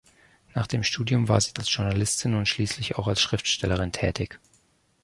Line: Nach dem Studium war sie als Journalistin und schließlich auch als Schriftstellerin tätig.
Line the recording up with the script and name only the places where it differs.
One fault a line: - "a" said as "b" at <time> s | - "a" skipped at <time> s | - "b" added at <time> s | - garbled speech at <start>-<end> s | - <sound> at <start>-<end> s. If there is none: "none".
none